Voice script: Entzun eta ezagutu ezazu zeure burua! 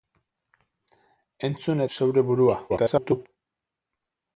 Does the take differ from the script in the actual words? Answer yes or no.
yes